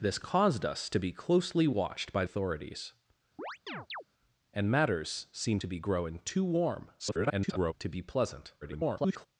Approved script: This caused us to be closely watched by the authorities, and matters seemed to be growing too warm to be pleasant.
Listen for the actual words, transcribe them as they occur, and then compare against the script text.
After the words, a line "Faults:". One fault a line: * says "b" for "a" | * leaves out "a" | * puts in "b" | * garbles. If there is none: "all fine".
This caused us to be closely watched by authorities, and matters seemed to be growing too warm [garbled] to be pleasant. [garbled]
Faults:
* leaves out "the"
* garbles
* garbles